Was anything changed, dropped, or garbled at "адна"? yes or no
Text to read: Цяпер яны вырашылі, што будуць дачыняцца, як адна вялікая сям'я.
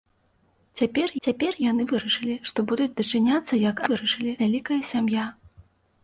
yes